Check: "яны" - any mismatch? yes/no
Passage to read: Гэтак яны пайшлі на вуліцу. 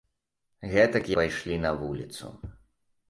yes